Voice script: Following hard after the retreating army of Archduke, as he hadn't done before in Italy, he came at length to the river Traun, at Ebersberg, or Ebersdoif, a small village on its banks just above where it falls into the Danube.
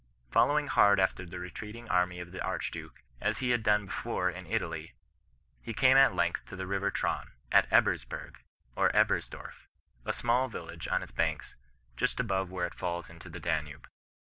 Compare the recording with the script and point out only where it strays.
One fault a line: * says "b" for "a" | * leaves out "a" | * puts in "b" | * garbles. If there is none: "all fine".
* puts in "the"
* says "had" for "hadn't"